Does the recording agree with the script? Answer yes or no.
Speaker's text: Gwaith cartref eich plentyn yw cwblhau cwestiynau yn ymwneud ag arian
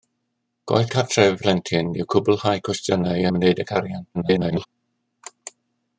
no